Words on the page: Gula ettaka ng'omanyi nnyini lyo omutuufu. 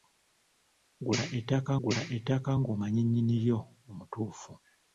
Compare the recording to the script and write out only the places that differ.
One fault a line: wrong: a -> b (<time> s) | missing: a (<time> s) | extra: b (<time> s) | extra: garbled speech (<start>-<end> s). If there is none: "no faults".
extra: gula ettaka (1.8 s)